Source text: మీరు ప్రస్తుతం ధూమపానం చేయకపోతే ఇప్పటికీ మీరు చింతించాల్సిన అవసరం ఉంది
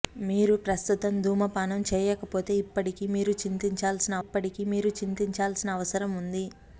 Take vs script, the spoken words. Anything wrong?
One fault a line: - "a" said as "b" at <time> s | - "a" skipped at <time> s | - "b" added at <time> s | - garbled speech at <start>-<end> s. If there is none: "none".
- "ఇప్పటికీ మీరు చింతించాల్సిన" added at 4.2 s